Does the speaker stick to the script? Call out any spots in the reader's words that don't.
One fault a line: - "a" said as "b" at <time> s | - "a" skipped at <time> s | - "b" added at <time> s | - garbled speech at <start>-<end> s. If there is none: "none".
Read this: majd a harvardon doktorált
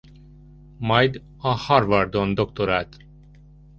none